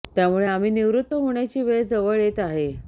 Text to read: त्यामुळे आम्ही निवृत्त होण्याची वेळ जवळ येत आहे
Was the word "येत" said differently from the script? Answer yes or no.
no